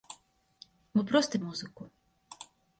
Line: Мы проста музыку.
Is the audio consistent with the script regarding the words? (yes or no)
yes